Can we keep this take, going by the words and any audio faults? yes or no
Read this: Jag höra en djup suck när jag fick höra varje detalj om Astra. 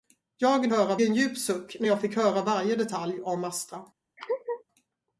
no